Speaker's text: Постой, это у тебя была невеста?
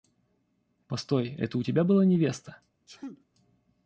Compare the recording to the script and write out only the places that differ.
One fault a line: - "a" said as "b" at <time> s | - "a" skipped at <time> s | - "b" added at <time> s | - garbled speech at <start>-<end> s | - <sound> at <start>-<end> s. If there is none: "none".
- sneeze at 2.9-3.2 s